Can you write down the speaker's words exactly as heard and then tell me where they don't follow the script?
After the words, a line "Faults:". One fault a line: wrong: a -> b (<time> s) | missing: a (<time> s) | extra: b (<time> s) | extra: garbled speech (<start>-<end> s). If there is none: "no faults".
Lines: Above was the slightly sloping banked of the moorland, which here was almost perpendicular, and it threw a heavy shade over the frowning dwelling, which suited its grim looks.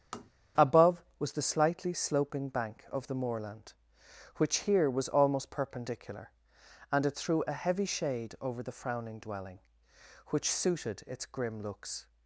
Above was the slightly sloping bank of the moorland, which here was almost perpendicular, and it threw a heavy shade over the frowning dwelling, which suited its grim looks.
Faults:
wrong: banked -> bank (2.5 s)